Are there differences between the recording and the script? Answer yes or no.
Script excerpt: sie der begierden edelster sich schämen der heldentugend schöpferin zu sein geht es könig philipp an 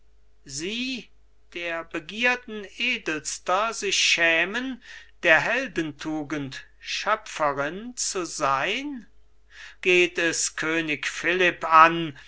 no